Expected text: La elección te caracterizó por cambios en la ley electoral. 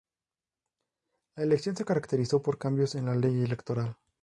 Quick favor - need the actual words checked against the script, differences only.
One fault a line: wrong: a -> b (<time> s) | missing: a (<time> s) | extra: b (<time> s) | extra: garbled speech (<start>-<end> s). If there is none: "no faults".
wrong: te -> se (1.8 s)